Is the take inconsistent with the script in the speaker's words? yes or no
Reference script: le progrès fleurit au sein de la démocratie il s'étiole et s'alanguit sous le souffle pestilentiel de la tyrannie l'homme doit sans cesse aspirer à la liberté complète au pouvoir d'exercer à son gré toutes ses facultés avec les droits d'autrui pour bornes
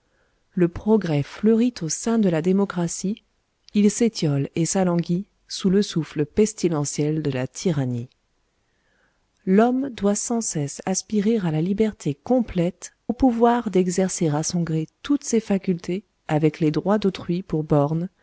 no